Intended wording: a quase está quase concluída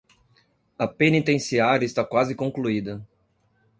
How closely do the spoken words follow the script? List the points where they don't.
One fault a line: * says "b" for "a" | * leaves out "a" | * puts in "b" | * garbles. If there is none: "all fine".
* says "penitenciária" for "quase"